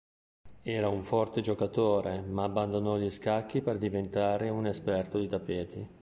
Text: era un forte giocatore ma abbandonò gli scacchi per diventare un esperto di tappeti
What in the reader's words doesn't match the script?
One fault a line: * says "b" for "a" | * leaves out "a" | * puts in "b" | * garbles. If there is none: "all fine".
all fine